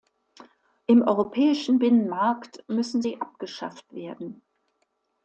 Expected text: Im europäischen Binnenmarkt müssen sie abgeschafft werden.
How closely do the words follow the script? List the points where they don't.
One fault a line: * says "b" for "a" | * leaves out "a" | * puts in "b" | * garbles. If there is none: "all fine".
all fine